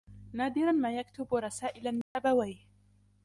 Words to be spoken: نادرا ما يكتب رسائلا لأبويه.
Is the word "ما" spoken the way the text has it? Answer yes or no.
yes